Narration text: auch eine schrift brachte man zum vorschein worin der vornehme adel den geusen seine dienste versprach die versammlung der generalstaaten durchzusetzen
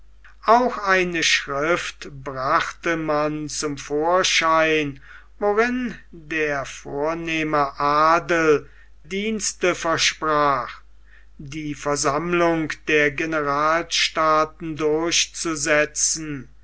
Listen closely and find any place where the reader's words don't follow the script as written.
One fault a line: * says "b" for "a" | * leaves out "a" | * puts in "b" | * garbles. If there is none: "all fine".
* leaves out "den geusen seine"